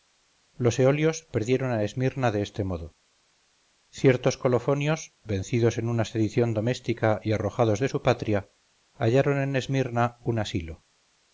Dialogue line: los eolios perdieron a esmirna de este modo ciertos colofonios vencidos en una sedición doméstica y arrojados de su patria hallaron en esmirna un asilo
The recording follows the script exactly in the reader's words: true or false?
true